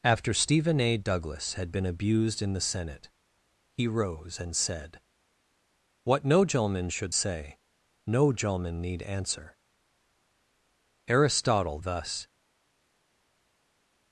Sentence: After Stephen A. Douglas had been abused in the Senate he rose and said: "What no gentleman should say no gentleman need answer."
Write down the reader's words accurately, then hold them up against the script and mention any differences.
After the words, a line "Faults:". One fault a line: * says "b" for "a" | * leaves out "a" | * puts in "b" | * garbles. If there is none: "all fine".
After Stephen A. Douglas had been abused in the Senate he rose and said: "What no gentleman should say no gentleman need answer." Aristotle thus
Faults:
* puts in "Aristotle thus"